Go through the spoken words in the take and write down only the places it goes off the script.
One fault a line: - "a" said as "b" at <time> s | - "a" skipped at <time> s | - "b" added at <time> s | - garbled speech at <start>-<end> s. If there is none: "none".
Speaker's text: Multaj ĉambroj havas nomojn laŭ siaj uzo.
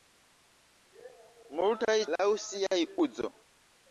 - "ĉambroj havas nomojn" skipped at 2.0 s